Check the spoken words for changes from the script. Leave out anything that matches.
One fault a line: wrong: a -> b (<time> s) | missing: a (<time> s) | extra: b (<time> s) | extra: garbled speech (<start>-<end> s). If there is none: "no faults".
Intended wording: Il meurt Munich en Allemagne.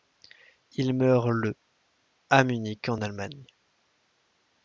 extra: le à (1.3 s)